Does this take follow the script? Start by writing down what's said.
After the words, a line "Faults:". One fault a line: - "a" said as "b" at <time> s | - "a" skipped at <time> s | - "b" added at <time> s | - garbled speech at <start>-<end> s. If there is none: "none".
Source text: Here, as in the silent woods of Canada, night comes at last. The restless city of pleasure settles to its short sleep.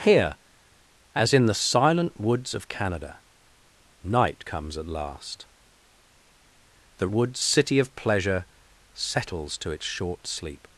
Here, as in the silent woods of Canada, night comes at last. The woods city of pleasure settles to its short sleep.
Faults:
- "restless" said as "woods" at 7.1 s